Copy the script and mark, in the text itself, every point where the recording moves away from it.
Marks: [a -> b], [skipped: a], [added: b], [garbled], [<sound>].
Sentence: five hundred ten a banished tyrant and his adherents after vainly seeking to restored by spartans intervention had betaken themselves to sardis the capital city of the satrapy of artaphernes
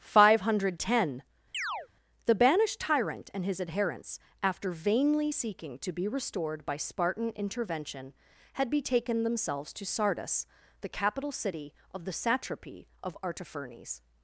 five hundred ten [chirp] [a -> the] banished tyrant and his adherents after vainly seeking to [added: be] restored by [spartans -> spartan] intervention had betaken themselves to sardis the capital city of the satrapy of artaphernes